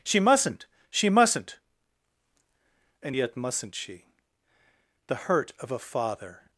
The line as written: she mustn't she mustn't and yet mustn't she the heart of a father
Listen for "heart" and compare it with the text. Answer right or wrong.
wrong